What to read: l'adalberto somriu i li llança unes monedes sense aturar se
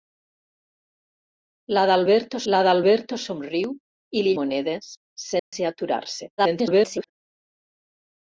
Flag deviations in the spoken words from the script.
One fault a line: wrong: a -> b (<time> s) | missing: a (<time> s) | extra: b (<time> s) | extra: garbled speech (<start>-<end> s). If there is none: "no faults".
extra: l'adalberto (2.5 s)
missing: llança unes (4.3 s)
extra: garbled speech (6.4-7.1 s)